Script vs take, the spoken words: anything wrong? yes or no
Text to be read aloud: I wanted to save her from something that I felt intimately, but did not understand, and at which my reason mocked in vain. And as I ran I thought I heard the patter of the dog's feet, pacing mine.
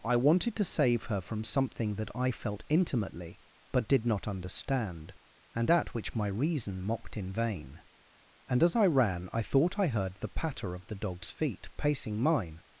no